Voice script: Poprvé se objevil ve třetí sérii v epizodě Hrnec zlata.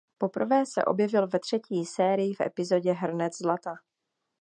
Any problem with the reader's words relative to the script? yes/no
no